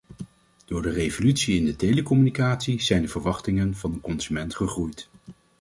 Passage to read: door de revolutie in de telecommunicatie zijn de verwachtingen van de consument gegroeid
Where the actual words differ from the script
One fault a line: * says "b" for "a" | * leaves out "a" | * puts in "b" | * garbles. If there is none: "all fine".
all fine